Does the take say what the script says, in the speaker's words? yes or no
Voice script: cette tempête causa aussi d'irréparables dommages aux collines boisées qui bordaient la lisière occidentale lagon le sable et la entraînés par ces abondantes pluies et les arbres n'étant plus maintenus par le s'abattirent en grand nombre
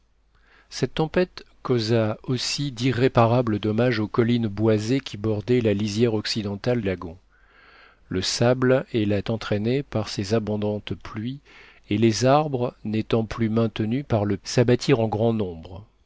yes